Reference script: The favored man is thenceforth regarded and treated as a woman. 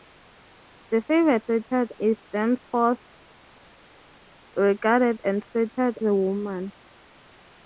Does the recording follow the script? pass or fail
fail